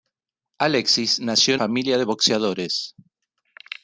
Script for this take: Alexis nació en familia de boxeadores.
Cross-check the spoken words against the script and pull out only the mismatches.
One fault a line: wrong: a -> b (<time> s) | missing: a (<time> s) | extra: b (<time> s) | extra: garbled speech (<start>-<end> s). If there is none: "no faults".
no faults